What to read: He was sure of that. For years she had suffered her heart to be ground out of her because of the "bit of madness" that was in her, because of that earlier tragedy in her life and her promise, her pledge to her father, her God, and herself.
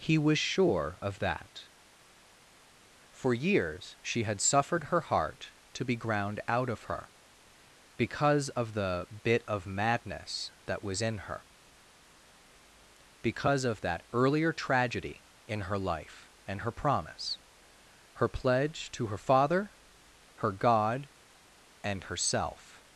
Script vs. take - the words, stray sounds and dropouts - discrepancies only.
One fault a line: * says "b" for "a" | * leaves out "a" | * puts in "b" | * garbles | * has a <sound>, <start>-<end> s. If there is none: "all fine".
all fine